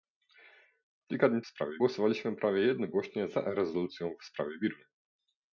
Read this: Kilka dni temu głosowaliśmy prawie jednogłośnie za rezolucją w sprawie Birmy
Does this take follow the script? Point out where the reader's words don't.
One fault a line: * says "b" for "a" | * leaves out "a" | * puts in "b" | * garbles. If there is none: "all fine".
* says "sprawie" for "temu"